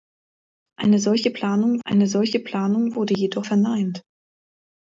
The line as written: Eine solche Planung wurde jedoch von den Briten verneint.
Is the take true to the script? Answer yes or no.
no